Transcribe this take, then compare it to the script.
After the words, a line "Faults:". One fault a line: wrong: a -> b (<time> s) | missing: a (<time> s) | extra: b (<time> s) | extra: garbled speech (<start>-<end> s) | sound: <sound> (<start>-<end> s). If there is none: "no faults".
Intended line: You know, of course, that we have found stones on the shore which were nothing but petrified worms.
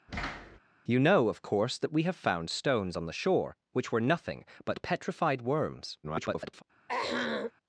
You know, of course, that we have found stones on the shore which were nothing but petrified worms. [garbled]
Faults:
sound: thud (0.1-0.6 s)
extra: garbled speech (6.0-6.6 s)
sound: throat clearing (6.9-7.5 s)